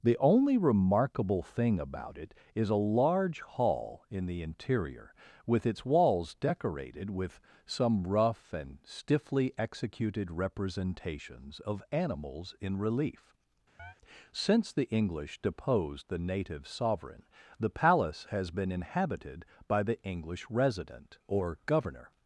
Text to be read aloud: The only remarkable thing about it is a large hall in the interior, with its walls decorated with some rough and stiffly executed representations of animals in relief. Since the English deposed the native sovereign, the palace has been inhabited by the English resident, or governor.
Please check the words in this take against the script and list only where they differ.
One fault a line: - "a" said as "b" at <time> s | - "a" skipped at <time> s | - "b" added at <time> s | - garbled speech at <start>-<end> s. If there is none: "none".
none